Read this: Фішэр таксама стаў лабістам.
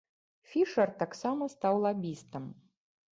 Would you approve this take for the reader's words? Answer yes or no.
yes